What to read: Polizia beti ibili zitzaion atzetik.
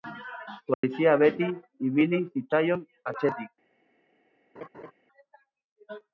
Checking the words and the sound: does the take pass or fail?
fail